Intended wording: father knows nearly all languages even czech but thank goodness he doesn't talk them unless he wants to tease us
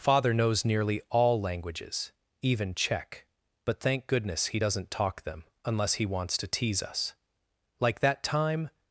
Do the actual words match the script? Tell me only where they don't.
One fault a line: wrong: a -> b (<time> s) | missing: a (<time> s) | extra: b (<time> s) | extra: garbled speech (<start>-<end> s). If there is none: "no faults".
extra: like that time (7.8 s)